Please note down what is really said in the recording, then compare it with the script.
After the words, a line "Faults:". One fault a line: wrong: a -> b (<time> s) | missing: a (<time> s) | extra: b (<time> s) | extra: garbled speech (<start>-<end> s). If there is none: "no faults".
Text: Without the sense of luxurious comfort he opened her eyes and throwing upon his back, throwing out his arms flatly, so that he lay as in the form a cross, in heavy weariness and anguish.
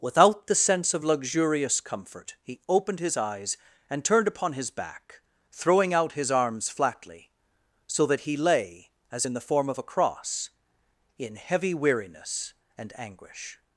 Without the sense of luxurious comfort he opened his eyes and turned upon his back, throwing out his arms flatly, so that he lay as in the form of a cross, in heavy weariness and anguish.
Faults:
wrong: her -> his (3.0 s)
wrong: throwing -> turned (4.0 s)
extra: of (9.7 s)